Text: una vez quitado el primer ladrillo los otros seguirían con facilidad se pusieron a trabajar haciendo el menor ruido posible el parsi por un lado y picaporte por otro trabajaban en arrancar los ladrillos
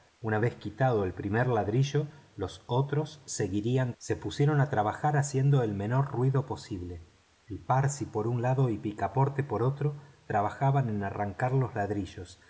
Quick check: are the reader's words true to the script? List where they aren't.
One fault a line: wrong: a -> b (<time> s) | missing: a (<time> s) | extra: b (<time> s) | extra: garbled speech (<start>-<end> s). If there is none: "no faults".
missing: con facilidad (3.9 s)